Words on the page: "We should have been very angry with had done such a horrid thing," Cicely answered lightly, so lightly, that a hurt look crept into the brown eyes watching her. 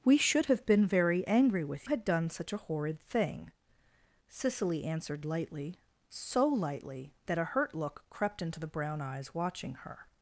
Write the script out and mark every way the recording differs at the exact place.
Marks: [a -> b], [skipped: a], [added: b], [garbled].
"We should have been very angry with had done such a horrid thing," Cicely answered lightly, so lightly, that a hurt look crept into the brown eyes watching her.